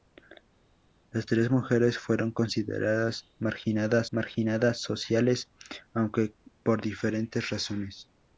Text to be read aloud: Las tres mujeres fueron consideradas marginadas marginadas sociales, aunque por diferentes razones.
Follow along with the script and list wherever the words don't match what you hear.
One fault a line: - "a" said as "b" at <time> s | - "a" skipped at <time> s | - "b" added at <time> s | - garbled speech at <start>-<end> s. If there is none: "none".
none